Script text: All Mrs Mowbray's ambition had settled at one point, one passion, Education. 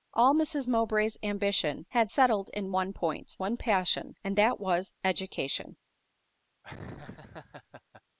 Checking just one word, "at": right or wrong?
wrong